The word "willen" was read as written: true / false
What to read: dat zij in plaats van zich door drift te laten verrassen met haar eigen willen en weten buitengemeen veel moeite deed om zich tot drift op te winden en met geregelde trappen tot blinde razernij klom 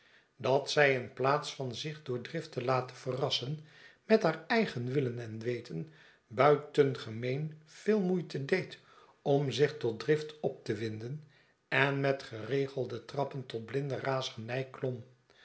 true